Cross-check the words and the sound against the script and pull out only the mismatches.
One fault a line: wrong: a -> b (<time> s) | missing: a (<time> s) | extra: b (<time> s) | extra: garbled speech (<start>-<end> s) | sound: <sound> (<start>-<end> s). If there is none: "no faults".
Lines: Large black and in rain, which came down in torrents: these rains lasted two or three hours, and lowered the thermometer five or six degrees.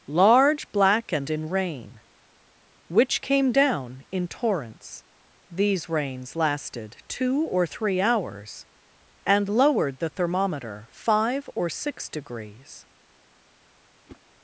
sound: whoosh (14.1-14.2 s)